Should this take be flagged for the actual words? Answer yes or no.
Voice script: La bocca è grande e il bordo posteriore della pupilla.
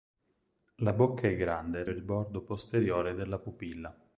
no